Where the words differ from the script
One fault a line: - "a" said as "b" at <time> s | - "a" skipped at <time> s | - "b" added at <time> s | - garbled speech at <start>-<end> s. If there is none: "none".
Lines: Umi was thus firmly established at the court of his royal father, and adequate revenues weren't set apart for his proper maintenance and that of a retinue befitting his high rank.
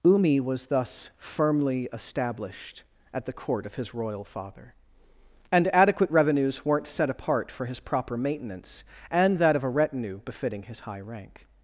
none